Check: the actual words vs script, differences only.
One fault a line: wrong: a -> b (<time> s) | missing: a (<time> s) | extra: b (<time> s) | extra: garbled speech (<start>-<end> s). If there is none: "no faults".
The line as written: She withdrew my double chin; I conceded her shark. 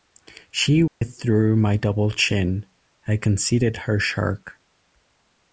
no faults